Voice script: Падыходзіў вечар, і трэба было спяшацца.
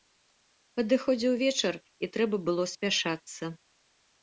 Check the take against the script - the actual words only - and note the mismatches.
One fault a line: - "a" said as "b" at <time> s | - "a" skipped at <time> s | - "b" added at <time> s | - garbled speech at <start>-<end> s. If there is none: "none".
none